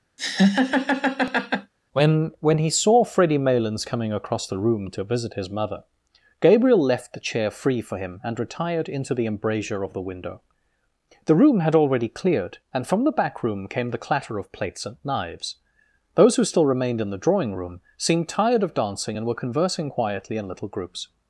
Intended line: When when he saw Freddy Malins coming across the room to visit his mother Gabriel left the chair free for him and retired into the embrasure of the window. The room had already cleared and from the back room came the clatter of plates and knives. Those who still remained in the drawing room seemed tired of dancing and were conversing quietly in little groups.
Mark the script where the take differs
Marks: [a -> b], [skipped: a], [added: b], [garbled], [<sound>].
[laugh] When when he saw Freddy Malins coming across the room to visit his mother Gabriel left the chair free for him and retired into the embrasure of the window. The room had already cleared and from the back room came the clatter of plates and knives. Those who still remained in the drawing room seemed tired of dancing and were conversing quietly in little groups.